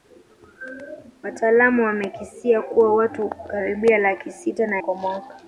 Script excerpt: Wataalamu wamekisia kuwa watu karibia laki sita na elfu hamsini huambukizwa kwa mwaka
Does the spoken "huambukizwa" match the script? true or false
false